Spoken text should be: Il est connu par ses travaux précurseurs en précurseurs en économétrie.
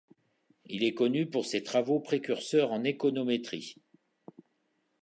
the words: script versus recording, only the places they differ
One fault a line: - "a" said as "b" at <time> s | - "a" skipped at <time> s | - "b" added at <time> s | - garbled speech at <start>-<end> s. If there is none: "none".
- "par" said as "pour" at 1.3 s
- "précurseurs en" skipped at 2.8 s